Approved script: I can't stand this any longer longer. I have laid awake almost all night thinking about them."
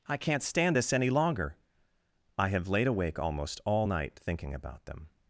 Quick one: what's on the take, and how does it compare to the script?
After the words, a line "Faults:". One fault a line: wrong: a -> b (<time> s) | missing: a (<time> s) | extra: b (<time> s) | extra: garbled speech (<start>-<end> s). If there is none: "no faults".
I can't stand this any longer. I have laid awake almost all night thinking about them."
Faults:
missing: longer (1.6 s)